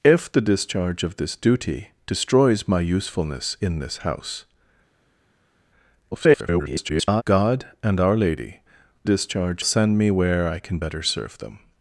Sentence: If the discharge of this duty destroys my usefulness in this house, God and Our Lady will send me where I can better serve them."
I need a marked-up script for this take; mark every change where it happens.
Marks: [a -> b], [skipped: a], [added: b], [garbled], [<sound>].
If the discharge of this duty destroys my usefulness in this house, [garbled] God and Our Lady [will -> discharge] send me where I can better serve them."